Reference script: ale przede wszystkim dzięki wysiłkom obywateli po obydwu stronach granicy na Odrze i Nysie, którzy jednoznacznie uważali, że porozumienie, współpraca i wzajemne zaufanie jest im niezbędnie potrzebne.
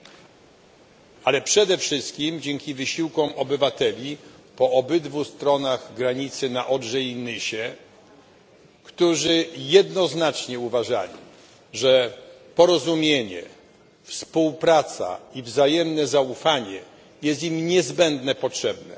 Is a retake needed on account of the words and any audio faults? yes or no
no